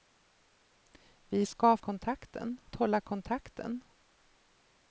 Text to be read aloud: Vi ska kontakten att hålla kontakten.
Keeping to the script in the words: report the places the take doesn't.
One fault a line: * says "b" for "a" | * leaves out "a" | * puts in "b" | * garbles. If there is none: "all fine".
all fine